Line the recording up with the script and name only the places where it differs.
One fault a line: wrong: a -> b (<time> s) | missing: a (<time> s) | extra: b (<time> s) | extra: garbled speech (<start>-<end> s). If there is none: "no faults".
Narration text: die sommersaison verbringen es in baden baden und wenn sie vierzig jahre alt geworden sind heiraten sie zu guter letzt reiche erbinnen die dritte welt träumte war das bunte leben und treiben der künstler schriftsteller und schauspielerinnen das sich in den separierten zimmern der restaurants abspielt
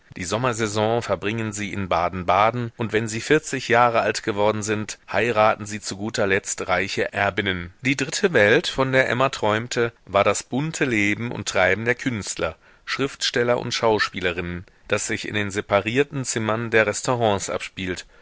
wrong: es -> sie (1.5 s)
extra: von der emma (8.7 s)